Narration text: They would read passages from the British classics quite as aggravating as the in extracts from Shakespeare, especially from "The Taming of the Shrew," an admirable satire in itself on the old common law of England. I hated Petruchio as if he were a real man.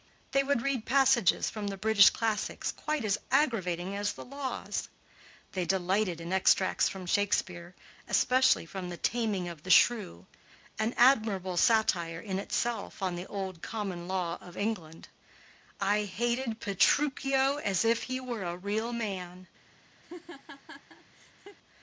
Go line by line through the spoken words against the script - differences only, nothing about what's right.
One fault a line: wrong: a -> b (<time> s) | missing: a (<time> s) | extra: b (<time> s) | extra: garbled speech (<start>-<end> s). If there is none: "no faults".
extra: laws They delighted (4.2 s)